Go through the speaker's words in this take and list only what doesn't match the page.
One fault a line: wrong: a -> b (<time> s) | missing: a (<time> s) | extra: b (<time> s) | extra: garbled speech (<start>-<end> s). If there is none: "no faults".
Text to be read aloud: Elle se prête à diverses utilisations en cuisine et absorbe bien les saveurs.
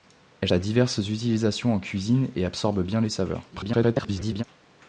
missing: se prête (0.5 s)
extra: garbled speech (3.5-4.4 s)